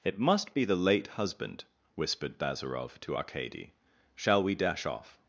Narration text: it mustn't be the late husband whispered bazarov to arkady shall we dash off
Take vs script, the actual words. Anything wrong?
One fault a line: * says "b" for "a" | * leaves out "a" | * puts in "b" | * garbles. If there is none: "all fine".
* says "must" for "mustn't"